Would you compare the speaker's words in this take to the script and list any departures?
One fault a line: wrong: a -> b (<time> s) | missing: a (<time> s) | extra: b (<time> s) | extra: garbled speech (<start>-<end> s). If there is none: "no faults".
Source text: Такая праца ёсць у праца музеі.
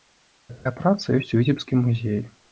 wrong: праца -> віцебскім (1.4 s)